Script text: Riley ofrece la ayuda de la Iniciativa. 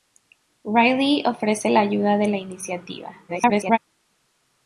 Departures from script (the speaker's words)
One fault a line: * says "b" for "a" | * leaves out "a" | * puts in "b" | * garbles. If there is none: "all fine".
* garbles